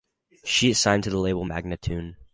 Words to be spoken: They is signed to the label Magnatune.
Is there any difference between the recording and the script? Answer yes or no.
yes